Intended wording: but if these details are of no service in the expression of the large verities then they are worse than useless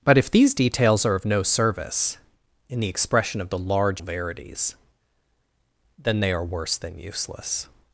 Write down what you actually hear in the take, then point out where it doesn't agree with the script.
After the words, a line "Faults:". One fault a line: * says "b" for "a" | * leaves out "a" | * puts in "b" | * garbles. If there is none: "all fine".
but if these details are of no service in the expression of the large verities then they are worse than useless
Faults:
all fine